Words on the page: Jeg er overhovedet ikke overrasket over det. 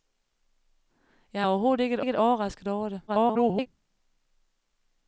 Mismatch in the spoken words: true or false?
true